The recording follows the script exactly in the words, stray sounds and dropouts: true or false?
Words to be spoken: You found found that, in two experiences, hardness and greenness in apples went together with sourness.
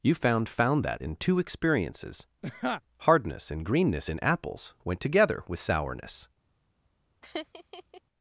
false